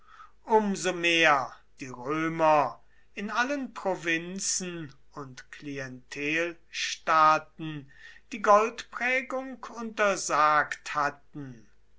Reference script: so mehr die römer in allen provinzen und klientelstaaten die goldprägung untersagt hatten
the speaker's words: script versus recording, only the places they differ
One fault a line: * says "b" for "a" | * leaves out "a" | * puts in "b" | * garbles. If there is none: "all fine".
all fine